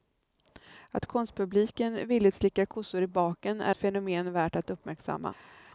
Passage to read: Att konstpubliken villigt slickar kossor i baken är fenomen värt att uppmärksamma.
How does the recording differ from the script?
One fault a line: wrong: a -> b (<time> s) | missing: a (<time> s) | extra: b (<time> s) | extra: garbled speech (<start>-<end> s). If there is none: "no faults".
no faults